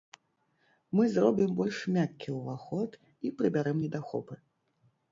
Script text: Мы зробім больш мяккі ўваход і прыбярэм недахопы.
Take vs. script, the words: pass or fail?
pass